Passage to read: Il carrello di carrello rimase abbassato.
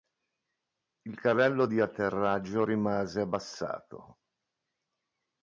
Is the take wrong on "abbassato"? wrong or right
right